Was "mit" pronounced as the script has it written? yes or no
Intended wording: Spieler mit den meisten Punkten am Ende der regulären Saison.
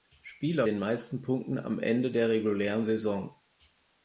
no